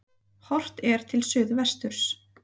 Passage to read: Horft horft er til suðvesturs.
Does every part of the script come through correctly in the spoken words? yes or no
no